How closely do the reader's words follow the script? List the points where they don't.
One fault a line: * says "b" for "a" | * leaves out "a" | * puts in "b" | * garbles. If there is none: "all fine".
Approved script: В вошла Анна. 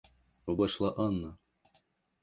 all fine